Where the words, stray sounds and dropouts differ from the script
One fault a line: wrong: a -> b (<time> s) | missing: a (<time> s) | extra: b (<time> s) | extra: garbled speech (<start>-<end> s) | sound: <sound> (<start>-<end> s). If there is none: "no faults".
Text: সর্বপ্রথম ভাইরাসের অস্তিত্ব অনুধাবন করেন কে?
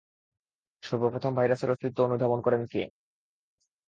no faults